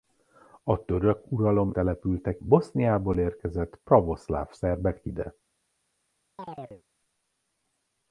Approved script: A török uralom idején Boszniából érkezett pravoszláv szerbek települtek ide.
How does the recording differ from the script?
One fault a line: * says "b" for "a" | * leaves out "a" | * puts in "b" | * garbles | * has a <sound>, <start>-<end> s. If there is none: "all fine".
* says "települtek" for "idején"
* leaves out "települtek"
* has a chirp, 6.4-6.8 s